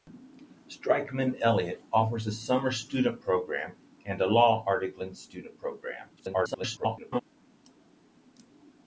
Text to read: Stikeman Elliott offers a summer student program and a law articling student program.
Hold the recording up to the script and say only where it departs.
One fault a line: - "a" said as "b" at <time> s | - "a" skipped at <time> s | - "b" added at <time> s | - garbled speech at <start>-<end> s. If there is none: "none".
- garbled speech at 6.2-7.2 s